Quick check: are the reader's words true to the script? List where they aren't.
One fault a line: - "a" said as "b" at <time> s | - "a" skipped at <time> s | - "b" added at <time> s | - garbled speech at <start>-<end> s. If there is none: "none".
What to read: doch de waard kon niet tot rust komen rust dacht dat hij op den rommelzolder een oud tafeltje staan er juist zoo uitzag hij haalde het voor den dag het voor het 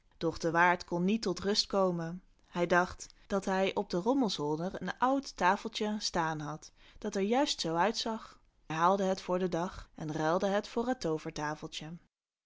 - "rust" said as "hij" at 2.5 s
- "had dat" added at 6.4 s
- "en ruilde" added at 9.9 s